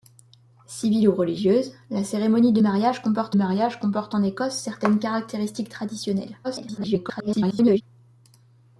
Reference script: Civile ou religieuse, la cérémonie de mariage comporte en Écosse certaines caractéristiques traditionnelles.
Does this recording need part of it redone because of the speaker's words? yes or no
yes